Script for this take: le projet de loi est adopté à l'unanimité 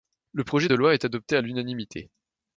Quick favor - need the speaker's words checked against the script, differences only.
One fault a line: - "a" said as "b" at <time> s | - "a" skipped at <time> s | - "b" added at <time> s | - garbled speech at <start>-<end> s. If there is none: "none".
none